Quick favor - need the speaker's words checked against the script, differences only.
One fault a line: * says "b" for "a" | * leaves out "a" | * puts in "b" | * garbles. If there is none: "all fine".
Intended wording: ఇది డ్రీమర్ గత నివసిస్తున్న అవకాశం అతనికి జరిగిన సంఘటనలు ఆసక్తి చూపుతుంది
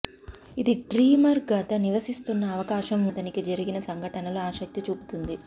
all fine